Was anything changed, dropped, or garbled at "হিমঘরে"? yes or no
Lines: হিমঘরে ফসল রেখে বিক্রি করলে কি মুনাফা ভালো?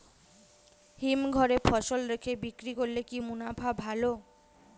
no